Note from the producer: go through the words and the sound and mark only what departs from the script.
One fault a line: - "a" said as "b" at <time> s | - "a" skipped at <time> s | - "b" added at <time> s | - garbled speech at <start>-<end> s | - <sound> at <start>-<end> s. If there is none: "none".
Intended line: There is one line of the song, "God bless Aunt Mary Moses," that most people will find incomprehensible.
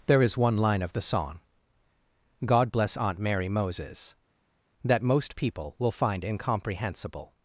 none